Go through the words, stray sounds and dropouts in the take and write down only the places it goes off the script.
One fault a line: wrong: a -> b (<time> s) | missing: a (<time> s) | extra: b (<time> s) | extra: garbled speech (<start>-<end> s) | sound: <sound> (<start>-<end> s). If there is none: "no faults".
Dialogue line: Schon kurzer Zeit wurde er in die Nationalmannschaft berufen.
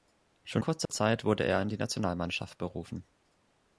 sound: dropout (0.9-0.9 s)